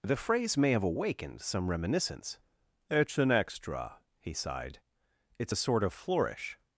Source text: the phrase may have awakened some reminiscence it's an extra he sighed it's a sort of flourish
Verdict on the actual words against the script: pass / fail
pass